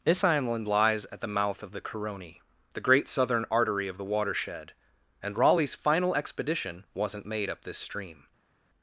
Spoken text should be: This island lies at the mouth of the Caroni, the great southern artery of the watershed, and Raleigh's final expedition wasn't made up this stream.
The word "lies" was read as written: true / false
true